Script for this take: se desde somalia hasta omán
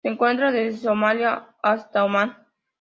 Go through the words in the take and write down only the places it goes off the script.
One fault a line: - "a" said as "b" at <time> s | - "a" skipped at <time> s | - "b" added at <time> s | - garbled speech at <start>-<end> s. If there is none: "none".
- "encuentra" added at 0.1 s